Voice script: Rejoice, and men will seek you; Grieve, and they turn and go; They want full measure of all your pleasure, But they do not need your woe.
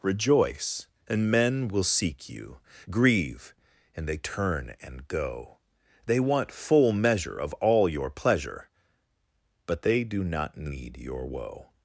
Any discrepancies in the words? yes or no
no